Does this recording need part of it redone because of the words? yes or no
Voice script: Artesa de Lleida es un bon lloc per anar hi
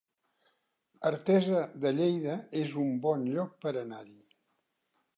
no